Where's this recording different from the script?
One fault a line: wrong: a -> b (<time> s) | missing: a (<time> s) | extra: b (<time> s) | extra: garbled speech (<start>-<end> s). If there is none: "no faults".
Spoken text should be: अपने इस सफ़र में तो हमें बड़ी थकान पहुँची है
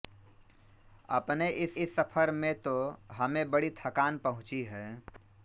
extra: इस (1.8 s)